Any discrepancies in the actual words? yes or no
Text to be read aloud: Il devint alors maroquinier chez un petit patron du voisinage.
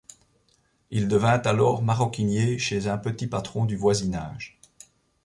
no